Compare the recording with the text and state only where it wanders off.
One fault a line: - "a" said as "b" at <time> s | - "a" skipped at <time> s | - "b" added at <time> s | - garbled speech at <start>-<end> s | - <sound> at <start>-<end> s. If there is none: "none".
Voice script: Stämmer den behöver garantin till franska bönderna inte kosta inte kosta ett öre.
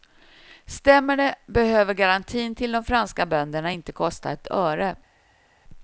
- "den" said as "det" at 1.2 s
- "de" added at 2.7 s
- "inte kosta" skipped at 4.3 s